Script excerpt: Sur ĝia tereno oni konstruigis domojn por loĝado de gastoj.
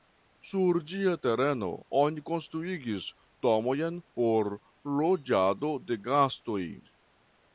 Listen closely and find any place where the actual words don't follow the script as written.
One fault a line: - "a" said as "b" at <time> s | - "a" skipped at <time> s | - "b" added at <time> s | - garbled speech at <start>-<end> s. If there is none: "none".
none